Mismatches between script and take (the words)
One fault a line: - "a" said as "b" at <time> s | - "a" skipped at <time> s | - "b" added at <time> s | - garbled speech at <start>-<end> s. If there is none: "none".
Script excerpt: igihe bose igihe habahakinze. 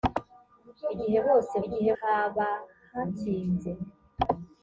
none